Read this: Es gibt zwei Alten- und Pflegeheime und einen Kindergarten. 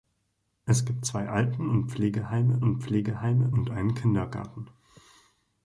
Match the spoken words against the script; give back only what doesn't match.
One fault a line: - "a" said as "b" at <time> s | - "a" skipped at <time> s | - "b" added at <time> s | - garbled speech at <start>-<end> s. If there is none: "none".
- "Pflegeheime und" added at 2.8 s